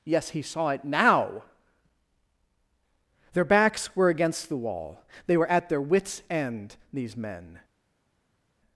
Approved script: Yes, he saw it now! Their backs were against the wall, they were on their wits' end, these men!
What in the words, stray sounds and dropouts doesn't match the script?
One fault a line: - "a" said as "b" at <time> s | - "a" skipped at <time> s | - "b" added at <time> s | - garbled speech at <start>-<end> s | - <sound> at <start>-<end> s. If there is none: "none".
- "on" said as "at" at 5.5 s